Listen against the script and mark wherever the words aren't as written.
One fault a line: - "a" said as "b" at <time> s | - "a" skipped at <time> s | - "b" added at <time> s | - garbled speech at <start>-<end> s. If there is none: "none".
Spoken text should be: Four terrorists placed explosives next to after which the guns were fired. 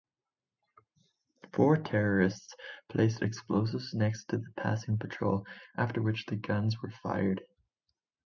- "the passing patrol" added at 4.4 s